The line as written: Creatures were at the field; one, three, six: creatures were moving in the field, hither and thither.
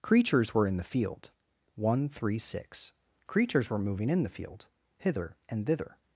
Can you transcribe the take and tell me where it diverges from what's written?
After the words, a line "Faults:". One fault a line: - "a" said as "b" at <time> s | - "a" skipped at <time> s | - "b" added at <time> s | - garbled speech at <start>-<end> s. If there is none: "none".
Creatures were in the field; one, three, six: creatures were moving in the field, hither and thither.
Faults:
- "at" said as "in" at 0.7 s